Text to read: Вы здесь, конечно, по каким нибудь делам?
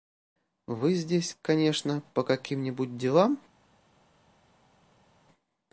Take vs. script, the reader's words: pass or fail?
pass